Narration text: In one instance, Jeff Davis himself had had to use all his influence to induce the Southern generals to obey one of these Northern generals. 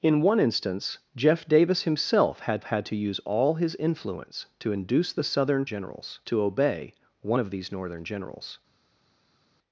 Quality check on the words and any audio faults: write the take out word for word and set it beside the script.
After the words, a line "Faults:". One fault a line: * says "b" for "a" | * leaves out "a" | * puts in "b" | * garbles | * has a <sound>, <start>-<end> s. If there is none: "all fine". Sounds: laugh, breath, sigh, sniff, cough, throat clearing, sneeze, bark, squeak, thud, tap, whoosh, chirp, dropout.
In one instance, Jeff Davis himself had had to use all his influence to induce the Southern generals to obey one of these Northern generals.
Faults:
all fine